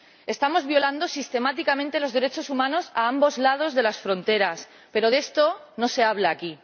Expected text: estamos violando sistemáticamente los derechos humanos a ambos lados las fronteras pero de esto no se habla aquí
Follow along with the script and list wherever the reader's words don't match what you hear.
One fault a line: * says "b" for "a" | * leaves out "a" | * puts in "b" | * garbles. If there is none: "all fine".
* puts in "de"